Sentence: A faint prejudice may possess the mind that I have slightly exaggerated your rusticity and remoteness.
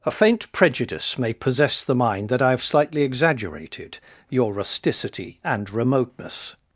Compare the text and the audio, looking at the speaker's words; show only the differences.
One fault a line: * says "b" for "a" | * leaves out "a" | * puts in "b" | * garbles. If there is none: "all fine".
all fine